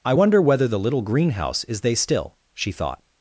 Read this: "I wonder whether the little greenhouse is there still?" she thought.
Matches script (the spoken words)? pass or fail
fail